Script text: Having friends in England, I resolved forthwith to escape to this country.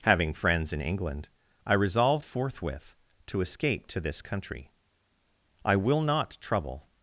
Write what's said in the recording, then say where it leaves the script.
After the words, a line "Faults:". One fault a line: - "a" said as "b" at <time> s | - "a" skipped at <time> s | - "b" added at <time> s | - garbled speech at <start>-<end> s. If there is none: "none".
Having friends in England, I resolved forthwith to escape to this country. I will not trouble
Faults:
- "I will not trouble" added at 5.6 s